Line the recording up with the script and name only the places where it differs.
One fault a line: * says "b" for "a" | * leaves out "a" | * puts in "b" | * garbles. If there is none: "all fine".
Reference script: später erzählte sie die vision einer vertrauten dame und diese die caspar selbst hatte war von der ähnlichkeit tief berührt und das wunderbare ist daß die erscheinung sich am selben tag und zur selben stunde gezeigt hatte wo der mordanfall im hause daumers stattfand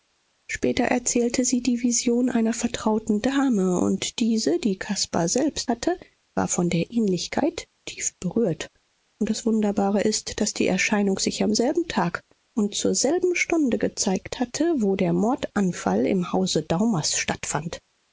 all fine